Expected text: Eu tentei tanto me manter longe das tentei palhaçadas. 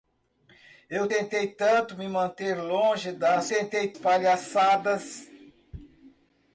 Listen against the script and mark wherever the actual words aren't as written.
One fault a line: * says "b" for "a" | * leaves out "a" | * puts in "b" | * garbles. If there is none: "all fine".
all fine